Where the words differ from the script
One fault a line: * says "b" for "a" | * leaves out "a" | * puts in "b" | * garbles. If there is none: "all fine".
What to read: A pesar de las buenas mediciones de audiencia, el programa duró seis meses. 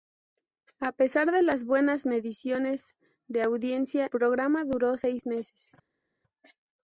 * leaves out "el"